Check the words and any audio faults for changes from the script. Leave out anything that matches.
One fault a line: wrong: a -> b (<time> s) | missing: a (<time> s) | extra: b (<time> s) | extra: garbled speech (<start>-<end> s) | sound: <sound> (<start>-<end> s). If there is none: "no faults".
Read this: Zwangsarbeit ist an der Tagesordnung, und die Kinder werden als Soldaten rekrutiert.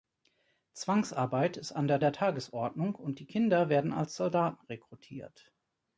extra: der (2.0 s)